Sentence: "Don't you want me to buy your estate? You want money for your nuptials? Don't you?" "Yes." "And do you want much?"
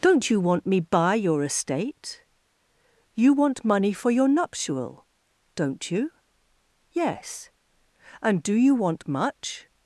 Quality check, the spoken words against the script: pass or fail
fail